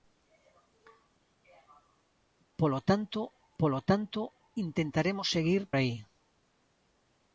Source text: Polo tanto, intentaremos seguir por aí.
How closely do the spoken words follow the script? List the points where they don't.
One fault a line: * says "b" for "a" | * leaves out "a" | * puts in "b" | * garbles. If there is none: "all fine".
* puts in "polo tanto"
* leaves out "por"